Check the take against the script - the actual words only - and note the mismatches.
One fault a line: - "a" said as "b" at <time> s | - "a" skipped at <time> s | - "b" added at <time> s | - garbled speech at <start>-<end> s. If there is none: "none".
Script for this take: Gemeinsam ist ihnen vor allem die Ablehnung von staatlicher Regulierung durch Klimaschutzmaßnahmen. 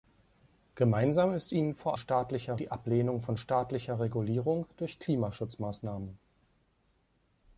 - "allem" said as "staatlicher" at 2.0 s